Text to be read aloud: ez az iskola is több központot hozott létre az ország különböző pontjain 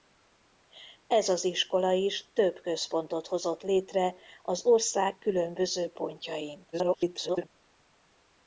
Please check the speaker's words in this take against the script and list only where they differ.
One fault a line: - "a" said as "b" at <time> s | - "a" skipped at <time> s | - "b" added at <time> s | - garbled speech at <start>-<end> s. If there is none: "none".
- garbled speech at 6.7-7.5 s